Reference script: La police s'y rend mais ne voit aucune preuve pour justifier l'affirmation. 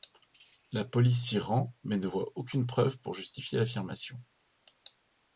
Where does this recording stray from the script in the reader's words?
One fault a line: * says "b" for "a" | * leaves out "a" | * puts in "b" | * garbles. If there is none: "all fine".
all fine